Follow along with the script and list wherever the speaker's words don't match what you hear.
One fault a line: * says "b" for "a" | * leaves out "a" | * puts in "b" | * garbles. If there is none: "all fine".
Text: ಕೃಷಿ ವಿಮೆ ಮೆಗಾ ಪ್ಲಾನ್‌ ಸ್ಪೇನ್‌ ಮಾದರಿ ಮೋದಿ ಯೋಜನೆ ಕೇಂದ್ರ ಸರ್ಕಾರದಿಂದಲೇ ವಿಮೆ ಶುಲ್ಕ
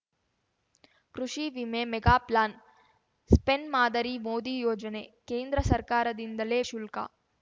* leaves out "ವಿಮೆ"